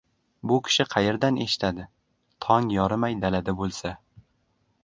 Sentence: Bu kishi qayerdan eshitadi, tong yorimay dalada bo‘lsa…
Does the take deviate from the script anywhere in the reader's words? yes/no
no